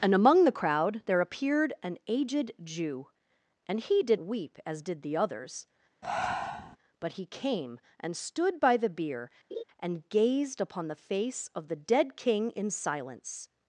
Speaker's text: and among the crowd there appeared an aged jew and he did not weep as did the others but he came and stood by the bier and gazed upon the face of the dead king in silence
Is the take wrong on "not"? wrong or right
wrong